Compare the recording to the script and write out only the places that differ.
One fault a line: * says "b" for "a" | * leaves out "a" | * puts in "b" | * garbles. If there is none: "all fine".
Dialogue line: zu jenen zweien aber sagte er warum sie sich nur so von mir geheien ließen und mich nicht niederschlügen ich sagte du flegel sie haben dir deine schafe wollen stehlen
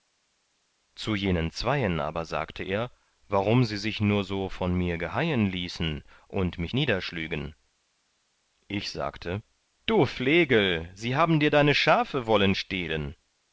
* leaves out "nicht"